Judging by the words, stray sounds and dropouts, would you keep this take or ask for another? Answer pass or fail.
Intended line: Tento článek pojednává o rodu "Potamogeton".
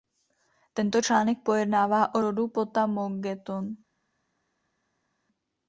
pass